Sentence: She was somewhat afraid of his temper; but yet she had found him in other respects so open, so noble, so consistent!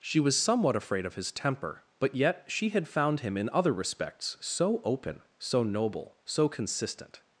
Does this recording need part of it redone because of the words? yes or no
no